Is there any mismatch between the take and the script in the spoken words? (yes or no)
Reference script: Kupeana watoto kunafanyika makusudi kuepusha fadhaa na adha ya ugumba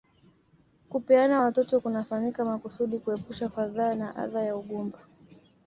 no